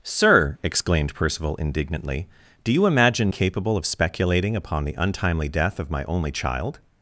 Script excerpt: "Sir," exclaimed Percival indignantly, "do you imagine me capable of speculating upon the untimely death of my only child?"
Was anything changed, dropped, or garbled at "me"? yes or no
yes